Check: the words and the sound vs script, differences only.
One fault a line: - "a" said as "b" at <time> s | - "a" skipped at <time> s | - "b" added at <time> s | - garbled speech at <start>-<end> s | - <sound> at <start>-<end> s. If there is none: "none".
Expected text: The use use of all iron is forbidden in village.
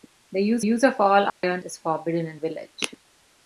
- dropout at 1.3-1.4 s